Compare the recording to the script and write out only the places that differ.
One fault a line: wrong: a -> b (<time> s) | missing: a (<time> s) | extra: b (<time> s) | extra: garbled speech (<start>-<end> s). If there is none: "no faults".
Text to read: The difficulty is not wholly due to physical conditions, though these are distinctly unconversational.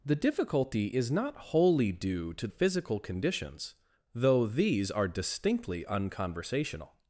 no faults